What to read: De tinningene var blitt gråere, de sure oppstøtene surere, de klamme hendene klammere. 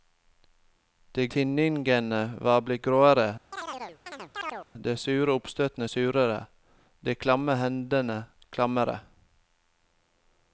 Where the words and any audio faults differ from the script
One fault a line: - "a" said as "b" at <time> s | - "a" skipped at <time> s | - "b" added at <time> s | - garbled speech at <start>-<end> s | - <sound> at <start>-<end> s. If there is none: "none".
- chirp at 3.5-4.7 s